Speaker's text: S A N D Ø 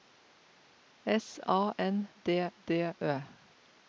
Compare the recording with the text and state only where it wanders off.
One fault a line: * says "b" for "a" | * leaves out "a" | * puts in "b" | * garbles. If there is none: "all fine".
* puts in "D"